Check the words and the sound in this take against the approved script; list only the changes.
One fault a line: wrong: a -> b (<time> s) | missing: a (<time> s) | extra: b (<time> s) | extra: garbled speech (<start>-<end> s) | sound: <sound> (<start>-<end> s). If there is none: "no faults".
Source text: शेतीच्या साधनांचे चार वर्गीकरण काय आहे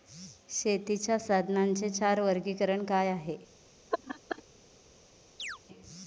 sound: laugh (3.9-4.4 s)
sound: chirp (5.4-5.6 s)